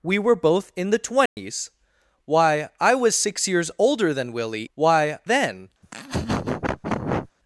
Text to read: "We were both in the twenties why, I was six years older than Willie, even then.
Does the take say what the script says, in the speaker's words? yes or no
no